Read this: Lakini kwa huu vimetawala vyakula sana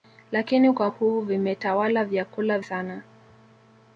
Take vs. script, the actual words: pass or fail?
pass